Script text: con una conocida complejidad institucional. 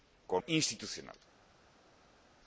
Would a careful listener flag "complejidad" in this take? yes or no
yes